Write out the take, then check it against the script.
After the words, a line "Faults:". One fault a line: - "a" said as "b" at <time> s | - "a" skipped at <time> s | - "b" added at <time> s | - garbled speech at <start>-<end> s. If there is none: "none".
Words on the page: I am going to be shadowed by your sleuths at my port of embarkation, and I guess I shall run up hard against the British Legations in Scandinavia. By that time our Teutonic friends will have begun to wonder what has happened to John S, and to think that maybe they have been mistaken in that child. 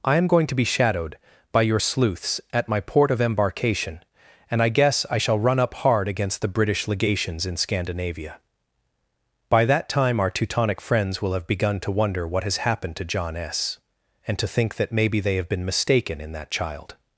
I am going to be shadowed by your sleuths at my port of embarkation, and I guess I shall run up hard against the British Legations in Scandinavia. By that time our Teutonic friends will have begun to wonder what has happened to John S, and to think that maybe they have been mistaken in that child.
Faults:
none